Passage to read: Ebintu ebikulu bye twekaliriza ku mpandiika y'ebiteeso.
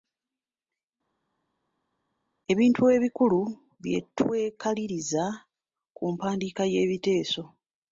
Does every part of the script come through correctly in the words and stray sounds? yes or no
yes